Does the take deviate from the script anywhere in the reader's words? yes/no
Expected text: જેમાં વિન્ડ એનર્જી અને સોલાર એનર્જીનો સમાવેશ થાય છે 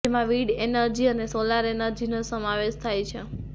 no